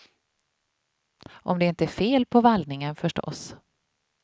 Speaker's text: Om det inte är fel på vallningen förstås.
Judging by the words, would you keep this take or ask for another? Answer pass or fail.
pass